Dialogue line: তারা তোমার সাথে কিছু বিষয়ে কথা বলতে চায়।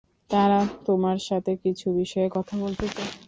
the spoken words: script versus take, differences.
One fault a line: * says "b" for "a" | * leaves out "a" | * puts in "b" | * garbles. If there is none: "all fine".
all fine